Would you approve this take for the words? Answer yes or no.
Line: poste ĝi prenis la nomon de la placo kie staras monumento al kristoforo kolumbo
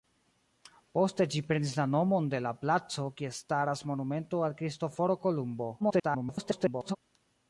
no